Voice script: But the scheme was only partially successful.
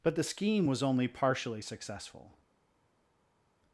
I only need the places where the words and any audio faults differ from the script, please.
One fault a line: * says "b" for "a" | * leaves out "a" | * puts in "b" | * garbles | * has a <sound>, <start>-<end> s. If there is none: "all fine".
all fine